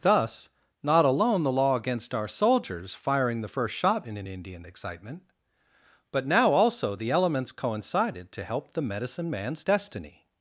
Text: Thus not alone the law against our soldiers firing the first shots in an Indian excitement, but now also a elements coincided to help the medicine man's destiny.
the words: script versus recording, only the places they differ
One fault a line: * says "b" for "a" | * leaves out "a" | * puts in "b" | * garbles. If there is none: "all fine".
* says "shot" for "shots"
* says "the" for "a"